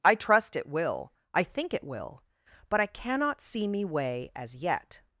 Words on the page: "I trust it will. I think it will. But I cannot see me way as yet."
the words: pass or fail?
pass